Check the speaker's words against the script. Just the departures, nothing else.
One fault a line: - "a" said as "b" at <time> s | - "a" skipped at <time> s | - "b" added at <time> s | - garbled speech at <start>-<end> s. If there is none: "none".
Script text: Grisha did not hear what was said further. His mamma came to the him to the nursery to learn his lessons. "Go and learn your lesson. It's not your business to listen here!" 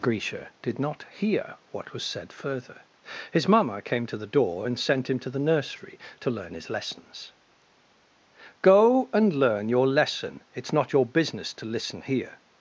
- "door and sent" added at 4.3 s